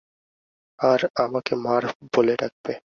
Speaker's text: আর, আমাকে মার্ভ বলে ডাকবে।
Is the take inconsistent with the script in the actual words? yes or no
no